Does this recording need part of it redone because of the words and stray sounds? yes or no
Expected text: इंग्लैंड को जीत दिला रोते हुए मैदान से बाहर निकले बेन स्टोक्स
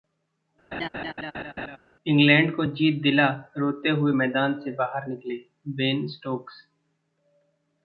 yes